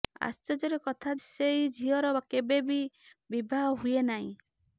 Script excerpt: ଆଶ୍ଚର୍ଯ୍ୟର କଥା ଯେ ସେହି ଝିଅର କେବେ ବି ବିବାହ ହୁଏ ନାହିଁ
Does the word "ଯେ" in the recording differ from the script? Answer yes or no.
yes